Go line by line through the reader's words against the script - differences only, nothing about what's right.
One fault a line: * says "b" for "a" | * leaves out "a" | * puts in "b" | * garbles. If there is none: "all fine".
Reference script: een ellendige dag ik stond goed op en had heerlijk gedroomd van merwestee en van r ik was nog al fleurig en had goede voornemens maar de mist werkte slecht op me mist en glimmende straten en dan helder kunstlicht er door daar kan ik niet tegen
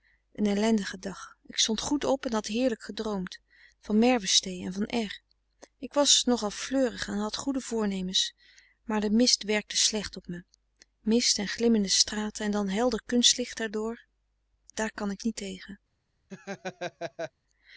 all fine